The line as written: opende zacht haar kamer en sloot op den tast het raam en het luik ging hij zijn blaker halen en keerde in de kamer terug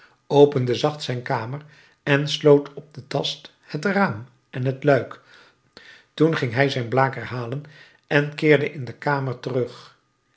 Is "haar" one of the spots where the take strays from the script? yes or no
yes